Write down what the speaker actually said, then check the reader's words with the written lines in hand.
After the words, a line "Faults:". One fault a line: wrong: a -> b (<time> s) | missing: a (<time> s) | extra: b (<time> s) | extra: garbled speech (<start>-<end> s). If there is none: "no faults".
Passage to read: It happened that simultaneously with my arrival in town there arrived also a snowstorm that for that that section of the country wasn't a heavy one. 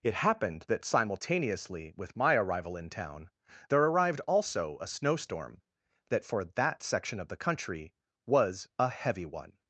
It happened that simultaneously with my arrival in town there arrived also a snowstorm that for that section of the country was a heavy one.
Faults:
missing: that (6.8 s)
wrong: wasn't -> was (8.3 s)